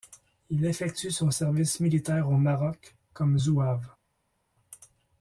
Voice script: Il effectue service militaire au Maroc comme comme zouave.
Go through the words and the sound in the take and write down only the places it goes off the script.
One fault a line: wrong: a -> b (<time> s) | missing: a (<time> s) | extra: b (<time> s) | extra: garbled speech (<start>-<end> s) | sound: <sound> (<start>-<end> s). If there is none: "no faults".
extra: son (1.1 s)
missing: comme (3.4 s)